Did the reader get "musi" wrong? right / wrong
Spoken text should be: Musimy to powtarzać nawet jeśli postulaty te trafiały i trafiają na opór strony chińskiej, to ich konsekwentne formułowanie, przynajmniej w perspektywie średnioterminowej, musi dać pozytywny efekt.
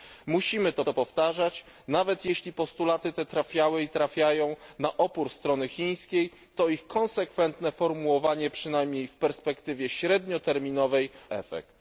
wrong